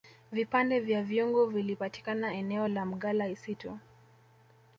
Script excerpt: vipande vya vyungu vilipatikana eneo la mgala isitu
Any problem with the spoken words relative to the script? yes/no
no